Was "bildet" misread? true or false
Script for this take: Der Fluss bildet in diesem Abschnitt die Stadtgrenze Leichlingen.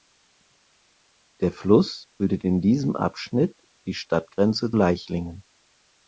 false